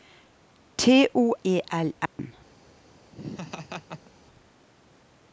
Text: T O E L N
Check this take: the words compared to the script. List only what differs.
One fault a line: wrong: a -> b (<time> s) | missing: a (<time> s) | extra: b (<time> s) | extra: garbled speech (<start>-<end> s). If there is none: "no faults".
no faults